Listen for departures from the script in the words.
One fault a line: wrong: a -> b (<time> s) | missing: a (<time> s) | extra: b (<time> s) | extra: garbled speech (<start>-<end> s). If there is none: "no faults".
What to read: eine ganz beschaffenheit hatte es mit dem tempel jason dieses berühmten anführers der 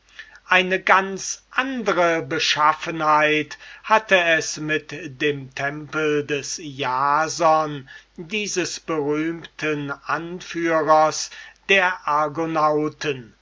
extra: andre (1.5 s)
extra: des (6.3 s)